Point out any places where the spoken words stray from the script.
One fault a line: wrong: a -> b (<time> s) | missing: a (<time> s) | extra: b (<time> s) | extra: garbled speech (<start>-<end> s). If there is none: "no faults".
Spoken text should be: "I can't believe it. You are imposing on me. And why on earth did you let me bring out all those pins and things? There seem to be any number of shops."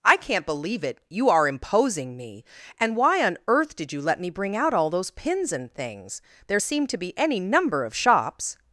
missing: on (2.1 s)